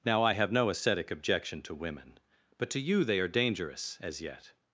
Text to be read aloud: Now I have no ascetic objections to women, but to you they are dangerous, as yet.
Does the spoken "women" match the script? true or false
true